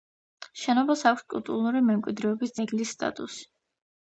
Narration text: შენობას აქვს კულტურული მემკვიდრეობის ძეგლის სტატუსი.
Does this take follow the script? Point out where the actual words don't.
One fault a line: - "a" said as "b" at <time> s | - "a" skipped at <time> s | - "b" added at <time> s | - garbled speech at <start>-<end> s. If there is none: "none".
none